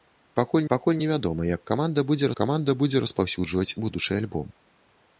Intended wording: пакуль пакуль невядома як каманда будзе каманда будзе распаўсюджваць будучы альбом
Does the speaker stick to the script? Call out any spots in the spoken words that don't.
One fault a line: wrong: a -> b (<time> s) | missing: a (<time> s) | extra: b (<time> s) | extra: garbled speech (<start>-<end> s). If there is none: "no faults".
no faults